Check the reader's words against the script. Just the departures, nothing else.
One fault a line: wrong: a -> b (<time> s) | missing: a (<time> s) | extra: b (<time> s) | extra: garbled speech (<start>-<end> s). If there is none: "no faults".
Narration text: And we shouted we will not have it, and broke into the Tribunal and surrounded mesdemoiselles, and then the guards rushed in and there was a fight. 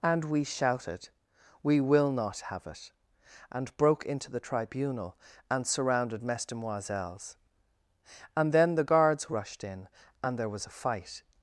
no faults